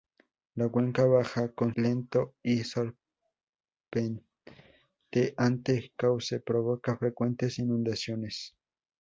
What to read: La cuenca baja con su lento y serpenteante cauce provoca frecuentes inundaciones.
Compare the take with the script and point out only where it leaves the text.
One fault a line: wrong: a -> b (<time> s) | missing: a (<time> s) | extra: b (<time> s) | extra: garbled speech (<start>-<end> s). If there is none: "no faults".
missing: su (1.8 s)